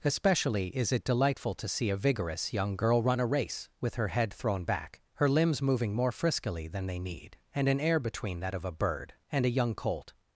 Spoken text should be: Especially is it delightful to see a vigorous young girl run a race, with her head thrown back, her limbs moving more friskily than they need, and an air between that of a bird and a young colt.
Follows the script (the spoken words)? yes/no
yes